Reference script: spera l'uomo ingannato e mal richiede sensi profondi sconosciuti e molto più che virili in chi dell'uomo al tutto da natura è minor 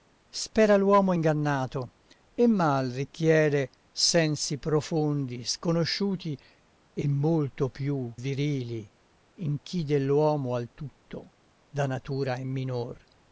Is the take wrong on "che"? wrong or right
wrong